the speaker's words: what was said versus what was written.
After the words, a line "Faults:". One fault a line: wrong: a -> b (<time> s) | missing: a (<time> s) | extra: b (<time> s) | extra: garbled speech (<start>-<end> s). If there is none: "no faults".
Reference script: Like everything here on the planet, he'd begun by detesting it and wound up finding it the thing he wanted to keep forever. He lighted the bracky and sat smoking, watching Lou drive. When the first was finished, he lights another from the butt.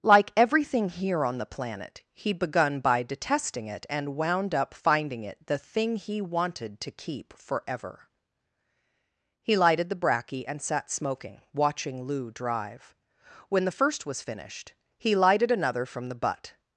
Like everything here on the planet, he'd begun by detesting it and wound up finding it the thing he wanted to keep forever. He lighted the bracky and sat smoking, watching Lou drive. When the first was finished, he lighted another from the butt.
Faults:
wrong: lights -> lighted (15.2 s)